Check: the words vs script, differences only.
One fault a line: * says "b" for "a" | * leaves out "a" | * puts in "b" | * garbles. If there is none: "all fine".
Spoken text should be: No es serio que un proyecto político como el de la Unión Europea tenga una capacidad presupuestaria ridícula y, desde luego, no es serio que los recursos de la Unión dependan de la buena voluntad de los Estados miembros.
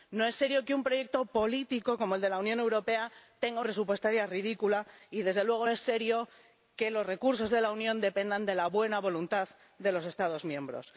* leaves out "una capacidad"
* leaves out "no"